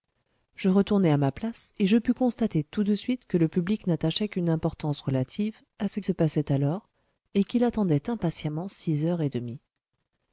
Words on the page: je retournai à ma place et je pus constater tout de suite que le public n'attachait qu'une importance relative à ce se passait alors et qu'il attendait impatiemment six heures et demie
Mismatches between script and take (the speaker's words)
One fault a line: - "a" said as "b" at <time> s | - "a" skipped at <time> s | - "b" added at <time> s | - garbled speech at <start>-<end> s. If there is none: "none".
none